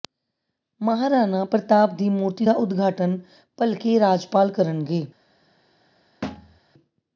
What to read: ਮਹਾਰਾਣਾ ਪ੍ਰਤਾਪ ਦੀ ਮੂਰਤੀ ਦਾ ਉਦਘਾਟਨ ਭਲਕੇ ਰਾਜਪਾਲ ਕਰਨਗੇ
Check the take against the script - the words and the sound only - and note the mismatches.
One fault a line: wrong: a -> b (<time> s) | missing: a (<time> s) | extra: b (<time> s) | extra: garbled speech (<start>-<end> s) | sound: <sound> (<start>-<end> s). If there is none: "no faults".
sound: thud (6.2-6.6 s)